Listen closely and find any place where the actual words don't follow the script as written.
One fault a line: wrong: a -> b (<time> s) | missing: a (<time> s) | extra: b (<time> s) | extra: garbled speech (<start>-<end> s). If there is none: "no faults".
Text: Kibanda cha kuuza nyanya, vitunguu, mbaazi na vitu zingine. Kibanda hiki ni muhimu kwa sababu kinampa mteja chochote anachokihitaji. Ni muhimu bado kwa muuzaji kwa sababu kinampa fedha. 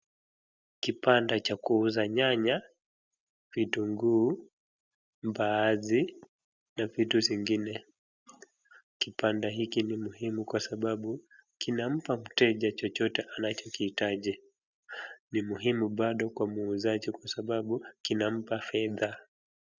no faults